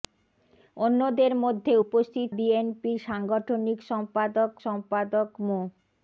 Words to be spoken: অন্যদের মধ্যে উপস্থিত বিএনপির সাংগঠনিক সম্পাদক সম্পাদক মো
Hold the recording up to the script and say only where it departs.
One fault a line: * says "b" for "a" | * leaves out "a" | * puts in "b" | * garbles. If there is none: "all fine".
all fine